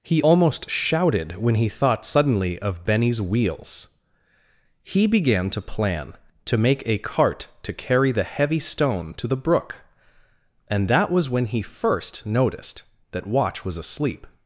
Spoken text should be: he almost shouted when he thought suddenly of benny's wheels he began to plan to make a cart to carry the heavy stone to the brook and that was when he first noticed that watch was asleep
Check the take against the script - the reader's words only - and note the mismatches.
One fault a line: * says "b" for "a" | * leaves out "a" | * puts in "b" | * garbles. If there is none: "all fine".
all fine